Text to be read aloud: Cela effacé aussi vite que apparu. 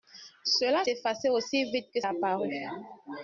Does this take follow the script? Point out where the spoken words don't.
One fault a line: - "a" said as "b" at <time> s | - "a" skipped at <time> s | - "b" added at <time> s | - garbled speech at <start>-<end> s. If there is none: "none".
none